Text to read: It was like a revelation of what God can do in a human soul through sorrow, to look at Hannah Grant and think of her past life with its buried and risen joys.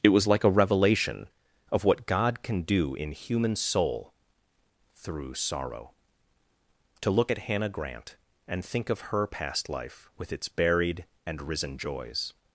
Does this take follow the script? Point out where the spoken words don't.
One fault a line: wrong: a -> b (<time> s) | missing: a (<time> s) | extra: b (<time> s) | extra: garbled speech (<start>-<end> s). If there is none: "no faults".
missing: a (3.1 s)